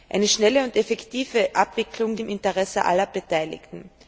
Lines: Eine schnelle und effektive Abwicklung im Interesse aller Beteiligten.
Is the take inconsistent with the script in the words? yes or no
no